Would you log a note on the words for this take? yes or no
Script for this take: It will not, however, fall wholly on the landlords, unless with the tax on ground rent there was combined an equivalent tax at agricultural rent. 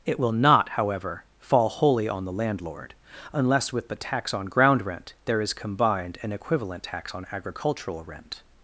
yes